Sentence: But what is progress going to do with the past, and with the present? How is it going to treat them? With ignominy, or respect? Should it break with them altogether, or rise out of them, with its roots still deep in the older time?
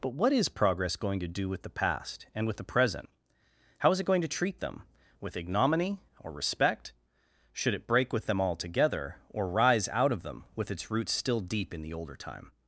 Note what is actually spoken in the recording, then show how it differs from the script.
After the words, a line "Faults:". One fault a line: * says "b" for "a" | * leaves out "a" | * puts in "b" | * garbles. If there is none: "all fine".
But what is progress going to do with the past, and with the present? How is it going to treat them? With ignominy, or respect? Should it break with them altogether, or rise out of them, with its roots still deep in the older time?
Faults:
all fine